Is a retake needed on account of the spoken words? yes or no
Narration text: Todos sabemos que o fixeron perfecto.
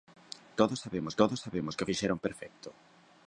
yes